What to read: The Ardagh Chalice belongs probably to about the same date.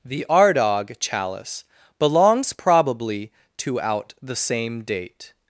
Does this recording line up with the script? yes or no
no